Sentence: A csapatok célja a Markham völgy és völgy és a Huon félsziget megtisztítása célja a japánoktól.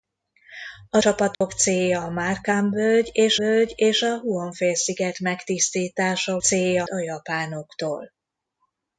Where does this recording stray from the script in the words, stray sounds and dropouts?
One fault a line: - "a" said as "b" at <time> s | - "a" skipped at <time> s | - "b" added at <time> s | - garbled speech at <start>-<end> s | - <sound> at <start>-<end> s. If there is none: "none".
- dropout at 1.3-1.4 s